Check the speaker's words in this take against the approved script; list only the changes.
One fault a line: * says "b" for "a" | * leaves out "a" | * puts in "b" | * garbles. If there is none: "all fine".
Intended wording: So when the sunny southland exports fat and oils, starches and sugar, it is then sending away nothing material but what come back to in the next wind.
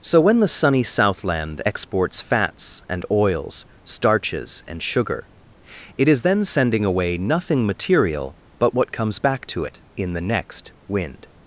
* says "fats" for "fat"
* says "comes" for "come"
* puts in "it"